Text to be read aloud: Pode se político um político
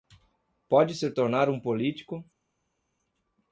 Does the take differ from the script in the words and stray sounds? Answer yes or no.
yes